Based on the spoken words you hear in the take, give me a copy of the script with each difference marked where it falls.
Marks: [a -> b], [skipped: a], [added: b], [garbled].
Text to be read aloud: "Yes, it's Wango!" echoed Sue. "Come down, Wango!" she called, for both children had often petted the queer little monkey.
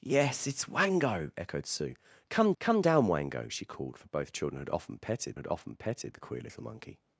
"Yes, it's Wango!" echoed Sue. "Come [added: come] down, Wango!" she called, for both children had often petted [added: had often petted] the queer little monkey.